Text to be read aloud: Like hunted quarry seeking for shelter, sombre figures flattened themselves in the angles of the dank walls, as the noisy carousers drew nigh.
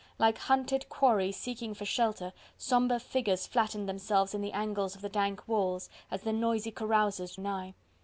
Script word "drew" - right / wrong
wrong